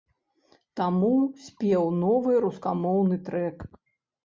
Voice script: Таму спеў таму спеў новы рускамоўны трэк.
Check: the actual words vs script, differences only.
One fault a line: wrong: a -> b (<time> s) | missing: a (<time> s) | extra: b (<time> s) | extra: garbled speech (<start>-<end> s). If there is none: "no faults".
missing: таму спеў (1.9 s)